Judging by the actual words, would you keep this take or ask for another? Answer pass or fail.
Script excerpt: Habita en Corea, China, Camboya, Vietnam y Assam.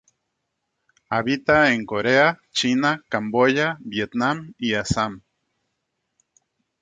pass